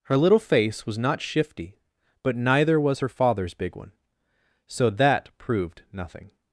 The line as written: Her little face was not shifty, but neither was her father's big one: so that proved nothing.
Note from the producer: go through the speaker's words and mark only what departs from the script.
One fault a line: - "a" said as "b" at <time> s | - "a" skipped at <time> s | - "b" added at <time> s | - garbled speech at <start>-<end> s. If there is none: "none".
none